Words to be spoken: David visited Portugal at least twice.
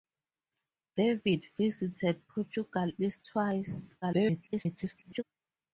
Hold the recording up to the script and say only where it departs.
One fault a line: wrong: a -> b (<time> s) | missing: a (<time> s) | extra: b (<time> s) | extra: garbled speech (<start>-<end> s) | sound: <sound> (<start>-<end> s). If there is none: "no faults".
missing: at (2.9 s)
extra: garbled speech (4.0-5.2 s)